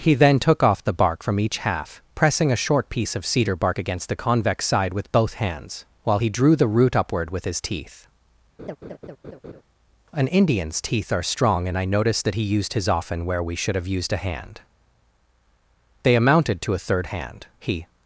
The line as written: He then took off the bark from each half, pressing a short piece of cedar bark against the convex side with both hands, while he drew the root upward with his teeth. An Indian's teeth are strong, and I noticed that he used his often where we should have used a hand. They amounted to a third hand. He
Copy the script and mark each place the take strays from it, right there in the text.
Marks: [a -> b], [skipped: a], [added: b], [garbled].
He then took off the bark from each half, pressing a short piece of cedar bark against the convex side with both hands, while he drew the root upward with his teeth. An Indian's teeth are strong, and I noticed that he used his often where we should have used a hand. They amounted to a third hand. He